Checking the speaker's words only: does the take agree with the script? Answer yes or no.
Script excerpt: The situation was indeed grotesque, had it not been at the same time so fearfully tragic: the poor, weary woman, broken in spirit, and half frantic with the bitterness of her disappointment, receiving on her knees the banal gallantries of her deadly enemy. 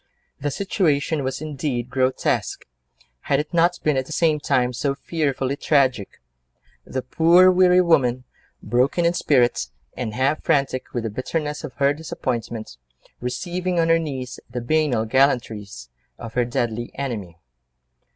yes